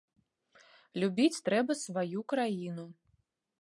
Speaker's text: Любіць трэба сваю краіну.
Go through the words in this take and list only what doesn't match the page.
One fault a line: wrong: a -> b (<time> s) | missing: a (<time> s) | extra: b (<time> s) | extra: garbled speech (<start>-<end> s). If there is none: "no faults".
no faults